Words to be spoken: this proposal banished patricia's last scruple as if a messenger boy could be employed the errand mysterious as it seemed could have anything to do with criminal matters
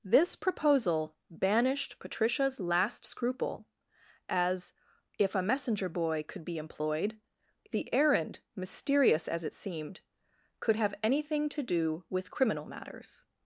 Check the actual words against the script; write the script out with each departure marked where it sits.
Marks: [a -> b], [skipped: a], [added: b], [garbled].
this proposal banished patricia's last scruple as if a messenger boy could be employed the errand mysterious as it seemed could have anything to do with criminal matters